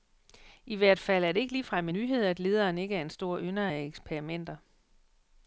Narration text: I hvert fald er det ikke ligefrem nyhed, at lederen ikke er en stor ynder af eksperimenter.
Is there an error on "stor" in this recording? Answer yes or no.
no